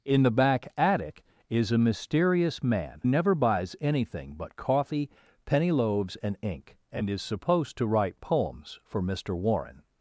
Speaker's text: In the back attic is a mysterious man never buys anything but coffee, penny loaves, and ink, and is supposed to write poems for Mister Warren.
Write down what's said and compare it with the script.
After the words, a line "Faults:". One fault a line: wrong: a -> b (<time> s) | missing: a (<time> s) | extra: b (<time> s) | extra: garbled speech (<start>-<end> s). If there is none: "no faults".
In the back attic is a mysterious man never buys anything but coffee, penny loaves, and ink, and is supposed to write poems for Mister Warren.
Faults:
no faults